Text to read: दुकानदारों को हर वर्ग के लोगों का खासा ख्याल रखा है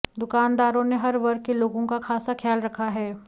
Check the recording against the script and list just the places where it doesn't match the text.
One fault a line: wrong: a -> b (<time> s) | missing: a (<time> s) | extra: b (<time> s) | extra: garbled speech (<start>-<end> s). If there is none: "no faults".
wrong: को -> ने (0.8 s)